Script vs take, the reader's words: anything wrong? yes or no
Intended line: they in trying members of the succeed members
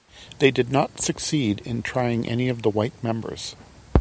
yes